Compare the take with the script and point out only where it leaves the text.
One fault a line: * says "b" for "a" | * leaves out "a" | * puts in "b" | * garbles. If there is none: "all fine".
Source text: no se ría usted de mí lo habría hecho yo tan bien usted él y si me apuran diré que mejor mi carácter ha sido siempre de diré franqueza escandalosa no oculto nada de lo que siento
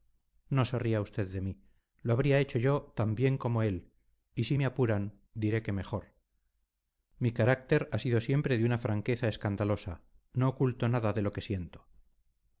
* says "como" for "usted"
* says "una" for "diré"